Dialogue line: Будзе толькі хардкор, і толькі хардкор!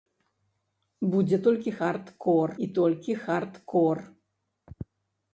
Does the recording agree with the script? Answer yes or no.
yes